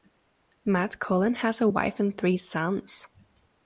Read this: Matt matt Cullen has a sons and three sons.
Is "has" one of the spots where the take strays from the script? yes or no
no